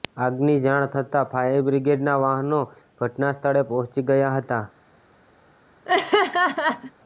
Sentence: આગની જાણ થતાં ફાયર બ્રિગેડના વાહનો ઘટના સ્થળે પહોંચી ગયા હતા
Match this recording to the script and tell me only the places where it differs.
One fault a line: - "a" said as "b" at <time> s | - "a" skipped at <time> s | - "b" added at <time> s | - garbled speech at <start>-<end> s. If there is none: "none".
none